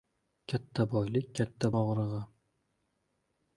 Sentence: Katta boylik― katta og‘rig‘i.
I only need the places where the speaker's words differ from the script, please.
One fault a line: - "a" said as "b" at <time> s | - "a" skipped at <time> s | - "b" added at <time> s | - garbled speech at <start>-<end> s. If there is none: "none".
none